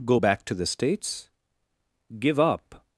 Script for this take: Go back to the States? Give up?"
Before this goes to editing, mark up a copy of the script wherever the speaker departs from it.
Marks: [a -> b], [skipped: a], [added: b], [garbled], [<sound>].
Go back to the States? Give up?"